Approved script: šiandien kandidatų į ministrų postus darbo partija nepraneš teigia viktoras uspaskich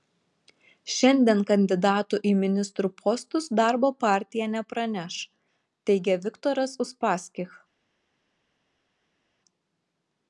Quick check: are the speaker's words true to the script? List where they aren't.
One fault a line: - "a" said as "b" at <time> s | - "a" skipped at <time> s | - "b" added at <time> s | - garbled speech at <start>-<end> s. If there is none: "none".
none